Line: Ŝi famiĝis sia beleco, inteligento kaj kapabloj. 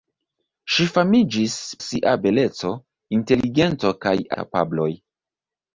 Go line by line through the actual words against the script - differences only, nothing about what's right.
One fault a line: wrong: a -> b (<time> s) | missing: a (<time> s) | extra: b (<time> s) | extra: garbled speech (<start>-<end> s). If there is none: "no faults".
no faults